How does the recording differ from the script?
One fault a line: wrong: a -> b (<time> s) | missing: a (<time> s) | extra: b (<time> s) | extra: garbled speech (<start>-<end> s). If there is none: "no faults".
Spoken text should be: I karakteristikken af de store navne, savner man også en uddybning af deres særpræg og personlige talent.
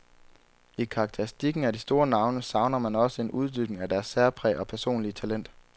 no faults